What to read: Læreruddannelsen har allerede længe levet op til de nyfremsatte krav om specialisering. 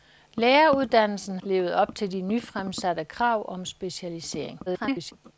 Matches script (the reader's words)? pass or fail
fail